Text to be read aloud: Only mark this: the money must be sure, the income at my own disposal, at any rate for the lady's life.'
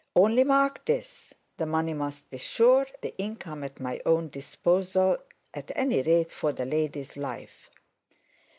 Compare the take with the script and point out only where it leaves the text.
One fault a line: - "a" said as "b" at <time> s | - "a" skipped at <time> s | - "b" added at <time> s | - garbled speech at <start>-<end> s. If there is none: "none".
none